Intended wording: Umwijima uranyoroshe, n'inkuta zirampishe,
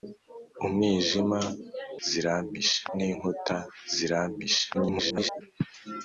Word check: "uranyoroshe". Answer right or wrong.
wrong